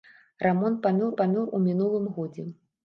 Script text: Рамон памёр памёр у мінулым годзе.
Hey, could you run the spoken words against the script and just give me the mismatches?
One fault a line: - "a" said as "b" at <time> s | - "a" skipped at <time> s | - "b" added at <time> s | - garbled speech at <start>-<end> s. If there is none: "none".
none